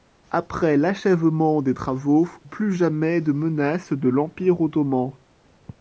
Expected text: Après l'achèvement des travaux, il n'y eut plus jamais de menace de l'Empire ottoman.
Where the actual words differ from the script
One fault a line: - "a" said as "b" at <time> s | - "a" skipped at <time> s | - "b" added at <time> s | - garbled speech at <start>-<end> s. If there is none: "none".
- "il n'y eut" skipped at 2.3 s